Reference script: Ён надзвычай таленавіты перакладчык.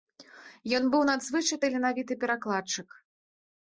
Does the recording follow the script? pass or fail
fail